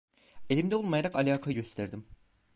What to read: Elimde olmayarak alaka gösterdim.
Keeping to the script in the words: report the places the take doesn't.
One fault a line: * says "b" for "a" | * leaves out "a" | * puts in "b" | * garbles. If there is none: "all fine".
all fine